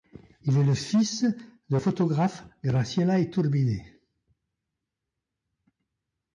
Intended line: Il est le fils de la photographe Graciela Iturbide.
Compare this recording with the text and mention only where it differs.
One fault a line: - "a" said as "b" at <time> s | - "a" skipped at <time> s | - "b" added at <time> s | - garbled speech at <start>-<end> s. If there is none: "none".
- "la" skipped at 1.8 s